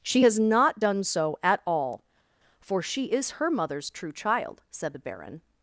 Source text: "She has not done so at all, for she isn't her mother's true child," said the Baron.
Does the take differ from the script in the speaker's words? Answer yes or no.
yes